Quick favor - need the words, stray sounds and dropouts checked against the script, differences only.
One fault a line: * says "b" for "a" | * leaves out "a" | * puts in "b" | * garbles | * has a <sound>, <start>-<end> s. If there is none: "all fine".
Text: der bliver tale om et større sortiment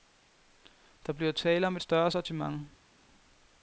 all fine